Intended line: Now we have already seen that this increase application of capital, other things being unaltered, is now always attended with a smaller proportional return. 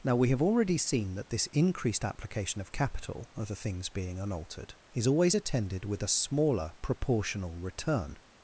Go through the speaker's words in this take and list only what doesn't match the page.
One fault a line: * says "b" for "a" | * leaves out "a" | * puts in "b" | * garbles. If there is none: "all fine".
* says "increased" for "increase"
* leaves out "now"